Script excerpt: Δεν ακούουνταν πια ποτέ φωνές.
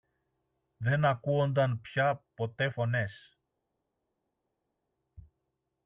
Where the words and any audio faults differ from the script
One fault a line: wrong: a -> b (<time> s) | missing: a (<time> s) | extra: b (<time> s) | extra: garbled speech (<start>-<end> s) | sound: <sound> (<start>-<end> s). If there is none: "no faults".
no faults